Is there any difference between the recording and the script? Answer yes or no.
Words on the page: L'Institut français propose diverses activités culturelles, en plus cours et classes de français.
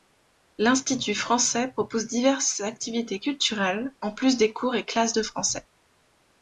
yes